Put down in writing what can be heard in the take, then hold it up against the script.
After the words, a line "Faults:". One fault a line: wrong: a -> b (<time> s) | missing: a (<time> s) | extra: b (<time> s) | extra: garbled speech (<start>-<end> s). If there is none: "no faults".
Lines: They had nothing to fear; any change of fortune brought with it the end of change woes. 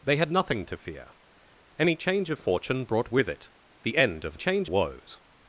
They had nothing to fear; any change of fortune brought with it the end of change woes.
Faults:
no faults